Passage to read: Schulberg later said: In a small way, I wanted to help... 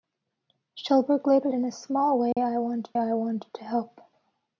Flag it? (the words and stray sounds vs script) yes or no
yes